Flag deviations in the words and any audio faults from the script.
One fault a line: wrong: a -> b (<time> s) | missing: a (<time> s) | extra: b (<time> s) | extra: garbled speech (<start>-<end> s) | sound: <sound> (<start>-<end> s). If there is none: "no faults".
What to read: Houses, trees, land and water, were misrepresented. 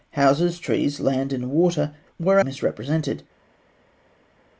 no faults